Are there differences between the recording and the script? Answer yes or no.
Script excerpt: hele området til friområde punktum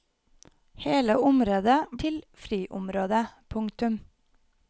no